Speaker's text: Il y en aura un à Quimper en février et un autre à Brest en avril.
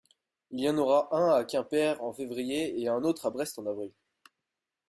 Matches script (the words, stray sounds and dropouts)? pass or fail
pass